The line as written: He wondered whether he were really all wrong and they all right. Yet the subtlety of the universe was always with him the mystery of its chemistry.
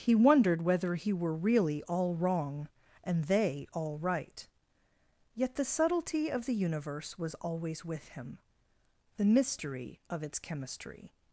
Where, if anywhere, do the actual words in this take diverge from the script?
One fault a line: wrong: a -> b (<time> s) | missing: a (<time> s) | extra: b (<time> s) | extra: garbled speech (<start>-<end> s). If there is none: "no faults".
no faults